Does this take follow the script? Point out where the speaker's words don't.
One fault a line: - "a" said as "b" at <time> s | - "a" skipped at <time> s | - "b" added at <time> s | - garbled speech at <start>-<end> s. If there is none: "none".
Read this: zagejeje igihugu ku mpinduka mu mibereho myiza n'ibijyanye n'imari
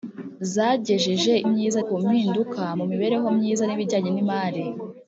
- "igihugu" said as "myiza" at 1.5 s